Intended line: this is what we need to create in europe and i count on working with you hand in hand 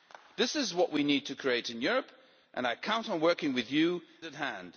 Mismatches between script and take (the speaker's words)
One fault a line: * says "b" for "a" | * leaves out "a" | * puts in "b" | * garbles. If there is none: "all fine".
* leaves out "hand"